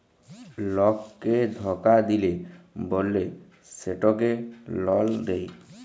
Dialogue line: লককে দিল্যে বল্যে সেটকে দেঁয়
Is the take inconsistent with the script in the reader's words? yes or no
yes